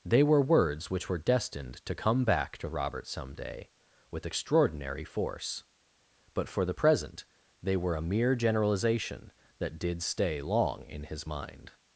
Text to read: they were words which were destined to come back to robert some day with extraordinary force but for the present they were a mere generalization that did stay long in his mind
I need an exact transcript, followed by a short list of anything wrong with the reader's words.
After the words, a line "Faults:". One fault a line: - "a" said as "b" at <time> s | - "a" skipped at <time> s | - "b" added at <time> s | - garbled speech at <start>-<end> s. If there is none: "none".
they were words which were destined to come back to robert some day with extraordinary force but for the present they were a mere generalization that did stay long in his mind
Faults:
none